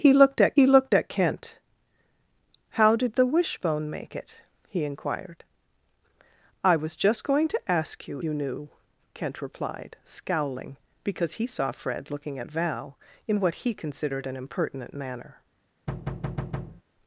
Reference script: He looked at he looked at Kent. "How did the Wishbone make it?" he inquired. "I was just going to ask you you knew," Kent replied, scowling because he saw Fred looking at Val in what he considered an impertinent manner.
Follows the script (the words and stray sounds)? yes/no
no